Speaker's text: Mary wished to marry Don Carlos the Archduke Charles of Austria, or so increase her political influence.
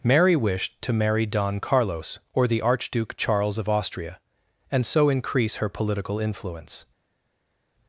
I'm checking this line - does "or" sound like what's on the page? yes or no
no